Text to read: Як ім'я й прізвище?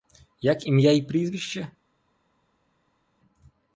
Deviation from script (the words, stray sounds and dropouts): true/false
false